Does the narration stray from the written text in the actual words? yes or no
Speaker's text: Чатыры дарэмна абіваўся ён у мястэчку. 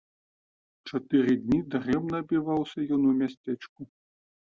yes